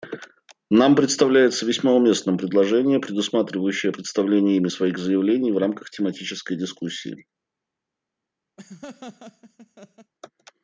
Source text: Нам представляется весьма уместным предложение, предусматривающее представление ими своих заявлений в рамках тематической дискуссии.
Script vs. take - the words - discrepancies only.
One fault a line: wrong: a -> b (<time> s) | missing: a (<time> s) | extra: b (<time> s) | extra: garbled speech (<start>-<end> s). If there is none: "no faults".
no faults